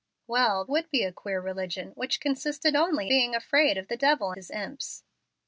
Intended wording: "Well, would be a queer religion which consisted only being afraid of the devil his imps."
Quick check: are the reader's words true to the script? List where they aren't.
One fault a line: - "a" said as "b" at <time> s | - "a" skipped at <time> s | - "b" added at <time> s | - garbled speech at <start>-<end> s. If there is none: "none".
none